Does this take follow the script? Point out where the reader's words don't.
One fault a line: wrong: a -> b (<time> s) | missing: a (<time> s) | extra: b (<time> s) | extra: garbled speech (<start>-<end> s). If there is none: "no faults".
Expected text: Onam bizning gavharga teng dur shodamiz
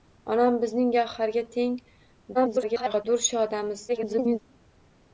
extra: garbled speech (2.3-3.0 s)
extra: garbled speech (3.9-4.4 s)